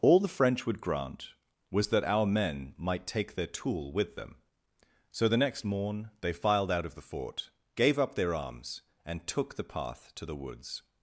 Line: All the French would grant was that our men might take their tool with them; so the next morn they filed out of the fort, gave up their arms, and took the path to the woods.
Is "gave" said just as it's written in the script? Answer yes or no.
yes